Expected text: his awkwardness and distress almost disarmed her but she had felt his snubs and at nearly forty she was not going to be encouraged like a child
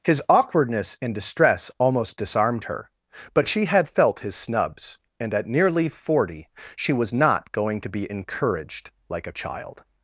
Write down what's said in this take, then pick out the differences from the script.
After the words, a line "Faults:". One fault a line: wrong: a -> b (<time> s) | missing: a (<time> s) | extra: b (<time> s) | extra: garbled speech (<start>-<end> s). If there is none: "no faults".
his awkwardness and distress almost disarmed her but she had felt his snubs and at nearly forty she was not going to be encouraged like a child
Faults:
no faults